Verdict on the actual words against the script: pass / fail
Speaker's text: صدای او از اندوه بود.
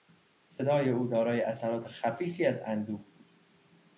fail